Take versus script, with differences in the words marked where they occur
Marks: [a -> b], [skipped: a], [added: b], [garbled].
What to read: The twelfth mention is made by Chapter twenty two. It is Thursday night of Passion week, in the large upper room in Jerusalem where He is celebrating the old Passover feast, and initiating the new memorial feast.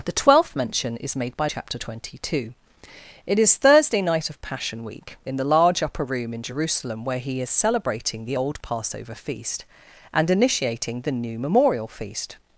The twelfth mention is made by Chapter twenty two. It is Thursday night of Passion week, in the large upper room in Jerusalem where He is celebrating the old Passover feast, and initiating the new memorial feast.